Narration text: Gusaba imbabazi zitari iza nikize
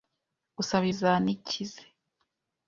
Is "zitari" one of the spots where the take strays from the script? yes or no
yes